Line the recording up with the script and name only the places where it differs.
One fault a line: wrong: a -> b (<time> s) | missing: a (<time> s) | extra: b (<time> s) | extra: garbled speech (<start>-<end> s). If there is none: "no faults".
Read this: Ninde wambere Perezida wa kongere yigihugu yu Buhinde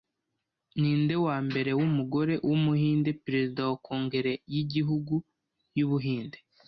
extra: wumugore wumuhinde (1.8 s)